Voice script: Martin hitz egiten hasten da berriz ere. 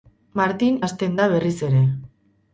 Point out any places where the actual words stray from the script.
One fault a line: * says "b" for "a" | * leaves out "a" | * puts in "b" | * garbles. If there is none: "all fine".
* leaves out "hitz egiten"